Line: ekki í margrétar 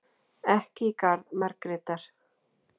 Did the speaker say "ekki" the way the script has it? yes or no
yes